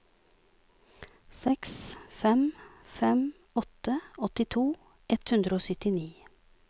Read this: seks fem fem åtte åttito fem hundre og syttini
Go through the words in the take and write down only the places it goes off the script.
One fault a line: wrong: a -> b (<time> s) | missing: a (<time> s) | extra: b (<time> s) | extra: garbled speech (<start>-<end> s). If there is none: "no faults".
wrong: fem -> ett (5.2 s)